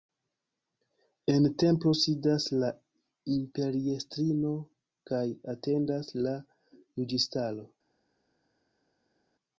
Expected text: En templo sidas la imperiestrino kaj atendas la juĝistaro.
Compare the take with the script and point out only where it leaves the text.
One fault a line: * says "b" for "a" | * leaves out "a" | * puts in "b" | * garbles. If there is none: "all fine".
all fine